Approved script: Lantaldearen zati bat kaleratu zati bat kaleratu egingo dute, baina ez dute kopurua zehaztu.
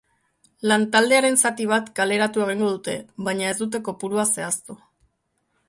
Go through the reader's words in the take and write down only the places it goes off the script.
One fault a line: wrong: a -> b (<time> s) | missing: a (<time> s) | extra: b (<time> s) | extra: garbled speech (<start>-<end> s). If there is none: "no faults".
missing: zati bat kaleratu (2.4 s)